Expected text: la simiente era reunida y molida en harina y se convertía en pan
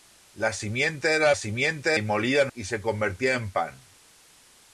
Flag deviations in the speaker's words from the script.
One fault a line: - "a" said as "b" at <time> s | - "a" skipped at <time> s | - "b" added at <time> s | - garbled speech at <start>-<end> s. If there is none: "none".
- "reunida" said as "simiente" at 1.3 s
- "harina" skipped at 2.5 s